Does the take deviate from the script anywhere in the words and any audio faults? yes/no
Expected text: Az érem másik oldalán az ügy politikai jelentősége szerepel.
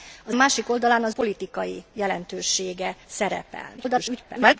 yes